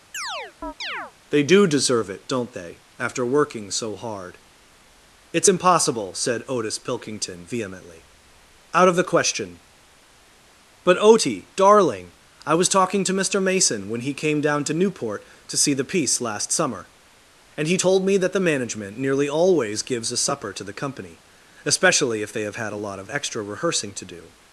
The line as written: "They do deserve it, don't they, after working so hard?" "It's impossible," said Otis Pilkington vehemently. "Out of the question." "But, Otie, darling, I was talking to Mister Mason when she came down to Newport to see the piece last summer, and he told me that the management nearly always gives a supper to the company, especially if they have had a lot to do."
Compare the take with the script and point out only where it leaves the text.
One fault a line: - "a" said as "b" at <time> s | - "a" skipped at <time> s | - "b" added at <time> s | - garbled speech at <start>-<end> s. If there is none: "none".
- "she" said as "he" at 14.0 s
- "of extra rehearsing" added at 23.0 s